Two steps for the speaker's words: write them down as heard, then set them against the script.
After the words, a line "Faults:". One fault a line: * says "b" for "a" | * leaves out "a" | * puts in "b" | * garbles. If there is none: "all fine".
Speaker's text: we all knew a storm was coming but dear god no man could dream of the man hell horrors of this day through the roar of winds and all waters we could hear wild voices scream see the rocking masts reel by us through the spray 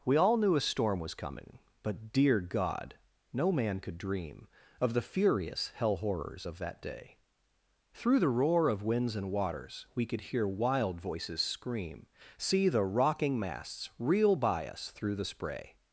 we all knew a storm was coming but dear god no man could dream of the furious hell horrors of that day through the roar of winds and waters we could hear wild voices scream see the rocking masts reel by us through the spray
Faults:
* says "furious" for "man"
* says "that" for "this"
* leaves out "all"